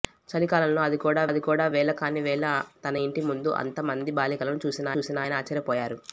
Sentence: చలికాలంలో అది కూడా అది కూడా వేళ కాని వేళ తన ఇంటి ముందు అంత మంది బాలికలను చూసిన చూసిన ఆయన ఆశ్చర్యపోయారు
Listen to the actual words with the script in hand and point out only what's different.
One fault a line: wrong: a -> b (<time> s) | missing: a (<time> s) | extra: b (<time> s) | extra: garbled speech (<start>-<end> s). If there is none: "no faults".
no faults